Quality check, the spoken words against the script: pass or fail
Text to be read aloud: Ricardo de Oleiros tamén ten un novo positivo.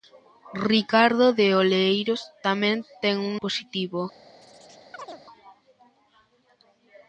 fail